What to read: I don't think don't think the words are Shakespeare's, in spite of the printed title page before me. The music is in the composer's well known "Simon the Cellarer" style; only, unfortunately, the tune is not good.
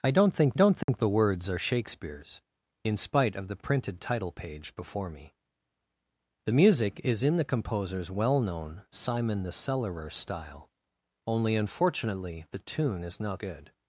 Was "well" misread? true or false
false